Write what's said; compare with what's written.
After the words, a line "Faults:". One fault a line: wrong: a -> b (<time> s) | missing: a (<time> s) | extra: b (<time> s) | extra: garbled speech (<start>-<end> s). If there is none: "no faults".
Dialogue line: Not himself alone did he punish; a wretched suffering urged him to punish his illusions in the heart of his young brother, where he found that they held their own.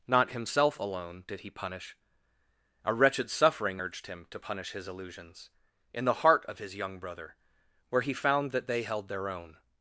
Not himself alone did he punish; a wretched suffering urged him to punish his illusions in the heart of his young brother, where he found that they held their own.
Faults:
no faults